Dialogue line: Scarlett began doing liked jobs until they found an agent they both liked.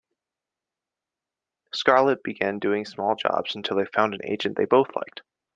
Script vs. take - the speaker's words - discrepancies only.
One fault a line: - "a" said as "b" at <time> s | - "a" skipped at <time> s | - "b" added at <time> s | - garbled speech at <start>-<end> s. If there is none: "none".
- "liked" said as "small" at 2.8 s